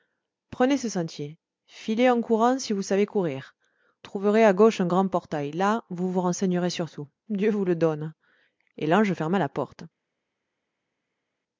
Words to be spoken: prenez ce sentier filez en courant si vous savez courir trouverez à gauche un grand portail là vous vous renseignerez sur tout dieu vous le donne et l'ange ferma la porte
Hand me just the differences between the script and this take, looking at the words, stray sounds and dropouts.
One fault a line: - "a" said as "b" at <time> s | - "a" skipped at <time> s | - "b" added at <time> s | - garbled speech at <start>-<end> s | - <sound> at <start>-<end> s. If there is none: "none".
none